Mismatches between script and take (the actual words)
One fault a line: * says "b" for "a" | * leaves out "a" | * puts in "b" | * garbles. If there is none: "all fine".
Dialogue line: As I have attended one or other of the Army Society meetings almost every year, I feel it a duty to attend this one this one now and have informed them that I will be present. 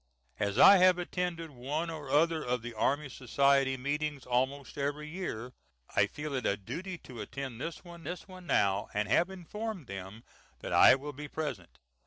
all fine